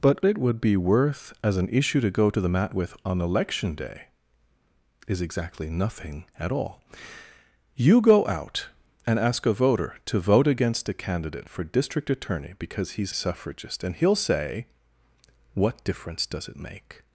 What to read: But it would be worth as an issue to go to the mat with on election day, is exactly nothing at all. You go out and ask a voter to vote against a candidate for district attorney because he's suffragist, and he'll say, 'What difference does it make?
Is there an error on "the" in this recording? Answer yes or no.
no